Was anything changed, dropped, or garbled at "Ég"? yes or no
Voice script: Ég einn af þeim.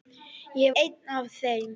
no